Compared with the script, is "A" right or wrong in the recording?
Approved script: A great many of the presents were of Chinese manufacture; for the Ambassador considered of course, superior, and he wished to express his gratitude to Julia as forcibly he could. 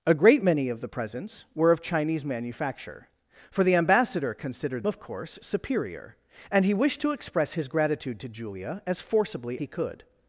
right